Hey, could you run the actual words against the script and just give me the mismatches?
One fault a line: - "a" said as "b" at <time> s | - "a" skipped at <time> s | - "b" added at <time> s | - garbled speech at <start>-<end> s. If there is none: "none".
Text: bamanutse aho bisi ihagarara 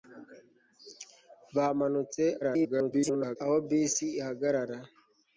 - garbled speech at 2.4-3.4 s